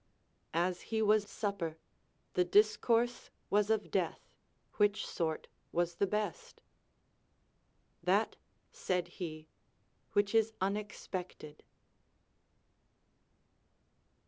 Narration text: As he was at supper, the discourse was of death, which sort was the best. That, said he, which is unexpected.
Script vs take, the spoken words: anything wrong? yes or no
yes